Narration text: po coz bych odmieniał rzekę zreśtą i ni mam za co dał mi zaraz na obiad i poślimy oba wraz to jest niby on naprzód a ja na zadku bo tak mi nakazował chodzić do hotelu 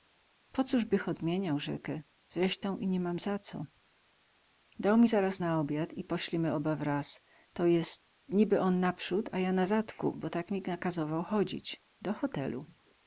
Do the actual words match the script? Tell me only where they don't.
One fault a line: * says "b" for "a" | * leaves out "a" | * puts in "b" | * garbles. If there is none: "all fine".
all fine